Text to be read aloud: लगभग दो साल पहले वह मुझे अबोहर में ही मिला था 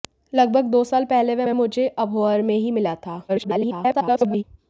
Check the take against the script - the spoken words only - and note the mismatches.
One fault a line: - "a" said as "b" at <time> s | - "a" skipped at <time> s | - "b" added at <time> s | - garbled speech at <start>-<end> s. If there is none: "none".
- "वह" added at 1.4 s
- garbled speech at 3.3-4.4 s